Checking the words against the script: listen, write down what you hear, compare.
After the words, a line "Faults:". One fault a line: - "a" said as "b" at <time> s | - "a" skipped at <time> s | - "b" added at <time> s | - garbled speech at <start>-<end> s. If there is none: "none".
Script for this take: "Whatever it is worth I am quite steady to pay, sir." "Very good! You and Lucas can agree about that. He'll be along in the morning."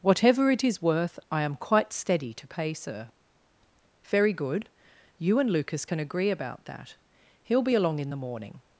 "Whatever it is worth I am quite steady to pay, sir." "Very good! You and Lucas can agree about that. He'll be along in the morning."
Faults:
none